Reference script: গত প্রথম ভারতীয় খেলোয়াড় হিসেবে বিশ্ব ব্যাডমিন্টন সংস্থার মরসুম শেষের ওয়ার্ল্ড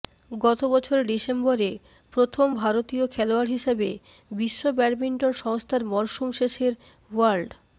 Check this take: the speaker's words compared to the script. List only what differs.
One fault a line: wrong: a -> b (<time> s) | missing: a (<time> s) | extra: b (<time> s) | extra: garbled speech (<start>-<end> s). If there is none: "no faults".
extra: বছর ডিসেম্বরে (0.7 s)